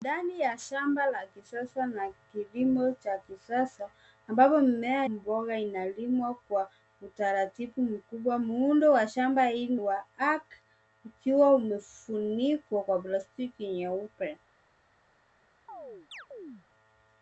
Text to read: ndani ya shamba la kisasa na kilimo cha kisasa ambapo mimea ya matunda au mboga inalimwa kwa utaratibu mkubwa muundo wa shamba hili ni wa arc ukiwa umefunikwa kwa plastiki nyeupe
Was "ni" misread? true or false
true